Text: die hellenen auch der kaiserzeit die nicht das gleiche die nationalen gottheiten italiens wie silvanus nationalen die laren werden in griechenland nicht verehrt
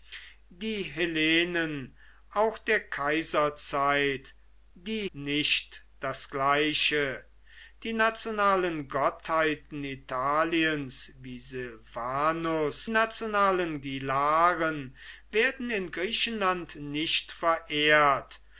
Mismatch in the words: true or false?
false